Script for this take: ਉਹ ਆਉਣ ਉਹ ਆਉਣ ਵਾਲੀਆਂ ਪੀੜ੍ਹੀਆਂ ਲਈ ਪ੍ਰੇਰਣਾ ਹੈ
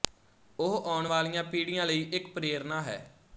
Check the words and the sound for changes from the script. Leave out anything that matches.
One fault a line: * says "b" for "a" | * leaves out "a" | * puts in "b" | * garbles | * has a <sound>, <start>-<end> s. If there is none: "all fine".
* leaves out "ਉਹ ਆਉਣ"
* puts in "ਇੱਕ"